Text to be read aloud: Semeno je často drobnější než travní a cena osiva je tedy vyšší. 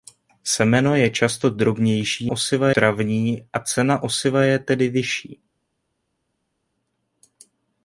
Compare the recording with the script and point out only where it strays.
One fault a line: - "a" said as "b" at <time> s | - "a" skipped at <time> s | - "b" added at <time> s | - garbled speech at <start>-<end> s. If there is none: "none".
- "než" said as "osiva" at 2.3 s